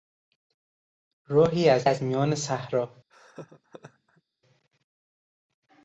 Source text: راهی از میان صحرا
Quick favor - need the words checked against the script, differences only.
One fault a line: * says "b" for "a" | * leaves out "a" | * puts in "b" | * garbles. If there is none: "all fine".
* puts in "از"